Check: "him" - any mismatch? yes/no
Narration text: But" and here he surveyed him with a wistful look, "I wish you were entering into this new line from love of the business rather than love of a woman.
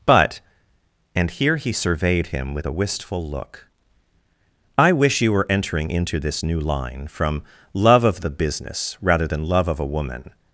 no